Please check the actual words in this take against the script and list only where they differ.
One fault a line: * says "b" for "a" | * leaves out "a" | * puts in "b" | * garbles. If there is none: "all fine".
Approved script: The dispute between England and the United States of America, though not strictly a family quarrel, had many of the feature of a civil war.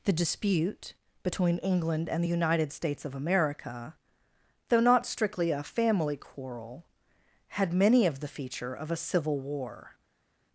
all fine